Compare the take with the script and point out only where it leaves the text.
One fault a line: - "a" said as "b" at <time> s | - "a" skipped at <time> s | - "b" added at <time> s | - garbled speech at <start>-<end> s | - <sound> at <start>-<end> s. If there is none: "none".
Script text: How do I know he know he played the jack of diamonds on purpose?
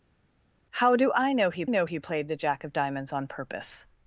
none